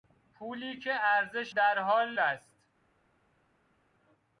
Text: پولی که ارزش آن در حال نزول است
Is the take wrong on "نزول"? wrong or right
wrong